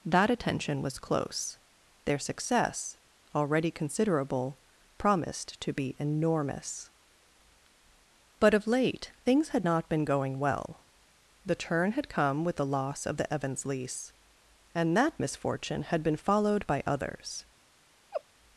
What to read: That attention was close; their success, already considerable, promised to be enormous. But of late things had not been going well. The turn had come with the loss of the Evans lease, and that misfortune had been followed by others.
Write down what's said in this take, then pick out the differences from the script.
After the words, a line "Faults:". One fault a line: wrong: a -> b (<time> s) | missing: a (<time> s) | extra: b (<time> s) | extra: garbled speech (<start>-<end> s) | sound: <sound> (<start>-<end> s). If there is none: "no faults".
That attention was close; their success, already considerable, promised to be enormous. But of late things had not been going well. The turn had come with the loss of the Evans lease, and that misfortune had been followed by others.
Faults:
sound: laugh (18.1-18.2 s)